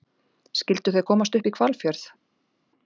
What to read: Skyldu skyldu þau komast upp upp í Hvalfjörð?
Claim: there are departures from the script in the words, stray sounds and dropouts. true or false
true